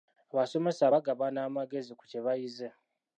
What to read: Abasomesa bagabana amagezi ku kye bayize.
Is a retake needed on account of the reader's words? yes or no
no